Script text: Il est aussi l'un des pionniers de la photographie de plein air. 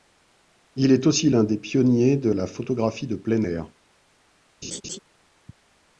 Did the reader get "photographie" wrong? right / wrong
right